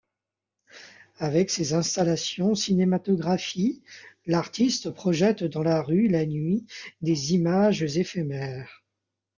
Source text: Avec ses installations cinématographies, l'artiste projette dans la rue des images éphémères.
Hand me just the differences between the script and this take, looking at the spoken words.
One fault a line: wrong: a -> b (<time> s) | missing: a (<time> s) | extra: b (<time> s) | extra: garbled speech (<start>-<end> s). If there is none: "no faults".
extra: la nuit (6.1 s)